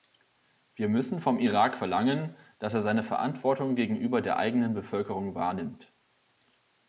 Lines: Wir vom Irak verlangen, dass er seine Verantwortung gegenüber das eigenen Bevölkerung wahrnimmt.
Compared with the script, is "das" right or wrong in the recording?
wrong